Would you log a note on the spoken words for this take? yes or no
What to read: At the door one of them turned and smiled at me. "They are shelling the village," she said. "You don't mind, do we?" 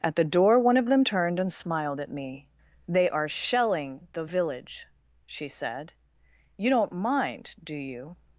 yes